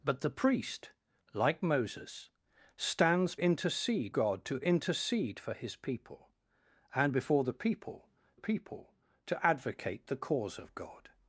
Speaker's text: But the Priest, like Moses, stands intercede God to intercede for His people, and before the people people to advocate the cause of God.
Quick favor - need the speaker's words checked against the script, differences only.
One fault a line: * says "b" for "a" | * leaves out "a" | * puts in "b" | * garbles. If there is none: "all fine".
all fine